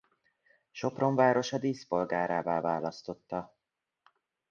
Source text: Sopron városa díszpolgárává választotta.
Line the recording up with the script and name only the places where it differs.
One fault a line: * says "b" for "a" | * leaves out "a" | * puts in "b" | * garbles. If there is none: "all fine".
all fine